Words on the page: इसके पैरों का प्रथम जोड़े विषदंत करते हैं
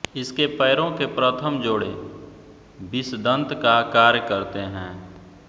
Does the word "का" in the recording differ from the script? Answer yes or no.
yes